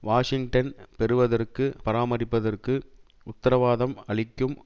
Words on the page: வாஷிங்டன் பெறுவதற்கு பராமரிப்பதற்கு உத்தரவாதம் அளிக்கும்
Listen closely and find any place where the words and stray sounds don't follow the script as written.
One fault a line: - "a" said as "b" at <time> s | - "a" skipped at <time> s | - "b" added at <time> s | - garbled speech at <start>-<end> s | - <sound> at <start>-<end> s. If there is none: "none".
none